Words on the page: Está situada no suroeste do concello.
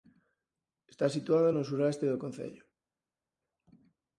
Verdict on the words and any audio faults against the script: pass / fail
pass